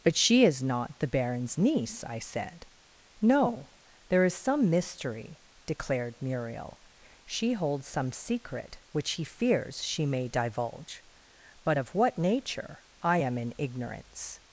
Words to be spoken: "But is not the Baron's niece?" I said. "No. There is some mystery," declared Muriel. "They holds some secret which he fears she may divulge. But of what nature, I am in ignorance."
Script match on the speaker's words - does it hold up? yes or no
no